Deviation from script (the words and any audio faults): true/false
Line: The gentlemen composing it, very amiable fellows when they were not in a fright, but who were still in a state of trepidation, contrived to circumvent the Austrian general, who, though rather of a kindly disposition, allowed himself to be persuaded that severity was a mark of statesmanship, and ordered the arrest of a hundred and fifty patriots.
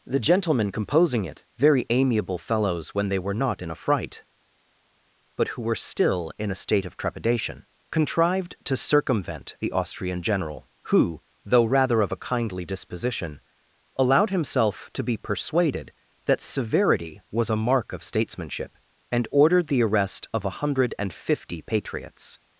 false